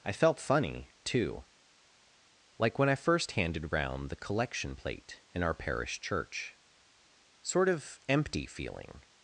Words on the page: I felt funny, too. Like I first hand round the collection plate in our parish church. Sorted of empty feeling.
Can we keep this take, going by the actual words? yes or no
no